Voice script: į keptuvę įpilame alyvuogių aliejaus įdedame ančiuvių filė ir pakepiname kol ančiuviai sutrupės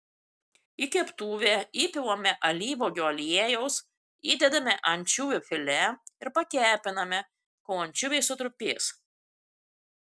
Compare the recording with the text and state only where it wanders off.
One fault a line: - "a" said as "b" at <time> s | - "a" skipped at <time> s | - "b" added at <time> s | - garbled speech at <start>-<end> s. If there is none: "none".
none